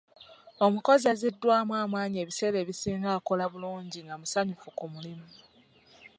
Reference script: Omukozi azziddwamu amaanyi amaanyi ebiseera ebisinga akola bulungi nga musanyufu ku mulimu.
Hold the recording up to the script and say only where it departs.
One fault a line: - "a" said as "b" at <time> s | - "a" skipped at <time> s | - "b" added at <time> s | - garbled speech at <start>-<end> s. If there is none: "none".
- "amaanyi" skipped at 2.2 s